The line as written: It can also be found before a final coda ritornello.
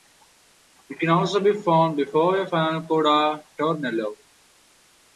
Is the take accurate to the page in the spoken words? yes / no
yes